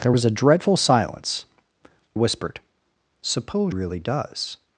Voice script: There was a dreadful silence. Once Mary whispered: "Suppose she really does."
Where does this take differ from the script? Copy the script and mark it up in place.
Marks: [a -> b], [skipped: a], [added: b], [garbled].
There was a dreadful silence. [skipped: Once Mary] whispered: "Suppose [skipped: she] really does."